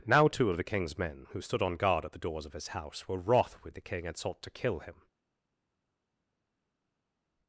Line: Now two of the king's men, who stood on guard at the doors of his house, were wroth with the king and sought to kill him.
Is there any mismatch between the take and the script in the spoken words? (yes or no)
no